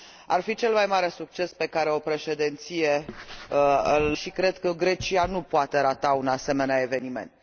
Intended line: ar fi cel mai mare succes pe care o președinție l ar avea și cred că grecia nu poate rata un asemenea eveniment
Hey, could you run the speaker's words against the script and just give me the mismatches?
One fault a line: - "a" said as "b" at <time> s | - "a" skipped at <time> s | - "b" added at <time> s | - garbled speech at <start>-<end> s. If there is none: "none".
- "ar avea" skipped at 4.2 s